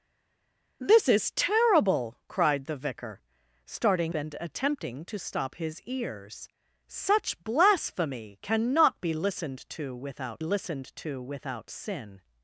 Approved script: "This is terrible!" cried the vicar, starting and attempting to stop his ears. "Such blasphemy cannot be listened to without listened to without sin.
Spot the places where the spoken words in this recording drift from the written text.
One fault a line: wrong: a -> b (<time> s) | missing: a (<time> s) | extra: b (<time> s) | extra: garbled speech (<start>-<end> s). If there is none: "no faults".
no faults